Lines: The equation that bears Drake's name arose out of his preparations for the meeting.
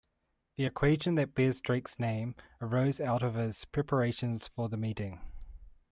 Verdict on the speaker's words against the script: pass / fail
pass